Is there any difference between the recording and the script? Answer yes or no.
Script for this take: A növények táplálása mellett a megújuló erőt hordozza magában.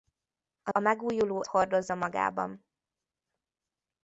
yes